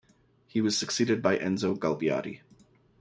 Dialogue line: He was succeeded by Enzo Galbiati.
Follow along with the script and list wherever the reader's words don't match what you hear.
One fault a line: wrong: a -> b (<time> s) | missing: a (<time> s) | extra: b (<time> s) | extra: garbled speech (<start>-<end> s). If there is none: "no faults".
no faults